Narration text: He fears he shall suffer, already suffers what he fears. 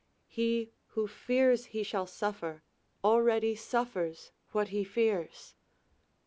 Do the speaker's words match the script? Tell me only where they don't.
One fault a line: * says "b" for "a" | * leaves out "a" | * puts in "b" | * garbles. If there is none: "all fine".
* puts in "who"